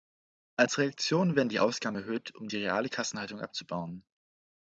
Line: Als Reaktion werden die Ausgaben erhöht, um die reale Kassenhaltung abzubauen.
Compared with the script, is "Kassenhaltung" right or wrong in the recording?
right